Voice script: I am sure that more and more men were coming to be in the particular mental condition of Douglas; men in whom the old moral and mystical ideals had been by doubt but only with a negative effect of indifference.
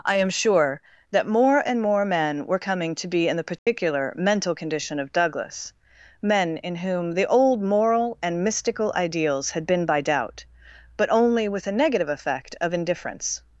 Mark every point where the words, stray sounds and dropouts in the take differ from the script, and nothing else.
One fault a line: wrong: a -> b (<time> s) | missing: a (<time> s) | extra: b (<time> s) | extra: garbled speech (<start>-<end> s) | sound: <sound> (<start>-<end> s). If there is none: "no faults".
sound: dropout (3.6-3.7 s)